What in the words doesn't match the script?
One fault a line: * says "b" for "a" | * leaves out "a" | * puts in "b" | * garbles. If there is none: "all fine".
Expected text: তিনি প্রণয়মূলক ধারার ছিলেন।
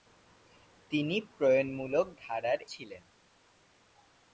all fine